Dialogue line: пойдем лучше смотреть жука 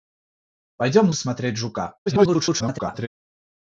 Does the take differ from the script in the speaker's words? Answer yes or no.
yes